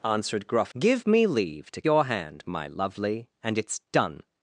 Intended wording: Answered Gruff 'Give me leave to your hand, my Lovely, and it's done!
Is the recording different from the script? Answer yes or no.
no